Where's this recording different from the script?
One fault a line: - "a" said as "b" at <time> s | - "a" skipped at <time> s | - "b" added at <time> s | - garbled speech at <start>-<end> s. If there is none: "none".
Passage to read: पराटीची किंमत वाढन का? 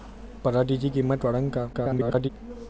- garbled speech at 1.7-2.3 s